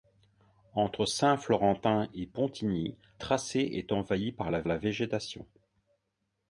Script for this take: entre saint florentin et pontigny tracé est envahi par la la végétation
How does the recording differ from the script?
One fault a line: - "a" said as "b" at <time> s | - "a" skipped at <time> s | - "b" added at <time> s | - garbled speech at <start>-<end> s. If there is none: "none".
none